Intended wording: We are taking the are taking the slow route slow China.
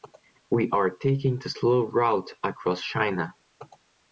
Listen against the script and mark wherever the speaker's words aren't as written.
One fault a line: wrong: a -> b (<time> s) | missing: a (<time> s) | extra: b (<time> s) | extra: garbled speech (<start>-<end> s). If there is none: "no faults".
missing: are taking the (1.5 s)
wrong: slow -> across (2.4 s)